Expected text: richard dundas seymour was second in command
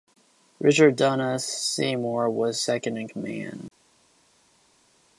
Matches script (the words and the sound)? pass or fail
pass